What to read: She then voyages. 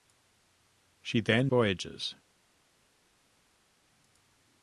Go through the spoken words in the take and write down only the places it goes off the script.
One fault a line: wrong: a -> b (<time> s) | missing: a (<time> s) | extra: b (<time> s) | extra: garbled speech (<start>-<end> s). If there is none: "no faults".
no faults